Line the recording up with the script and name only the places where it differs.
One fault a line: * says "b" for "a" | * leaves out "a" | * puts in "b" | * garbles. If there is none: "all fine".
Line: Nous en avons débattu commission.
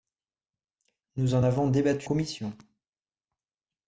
all fine